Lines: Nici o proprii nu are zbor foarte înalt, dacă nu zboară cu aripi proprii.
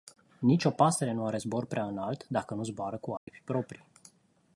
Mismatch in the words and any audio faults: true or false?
true